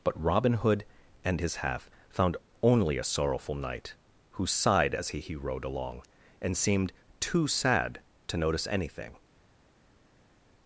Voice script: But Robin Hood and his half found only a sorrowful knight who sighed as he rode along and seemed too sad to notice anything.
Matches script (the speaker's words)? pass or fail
fail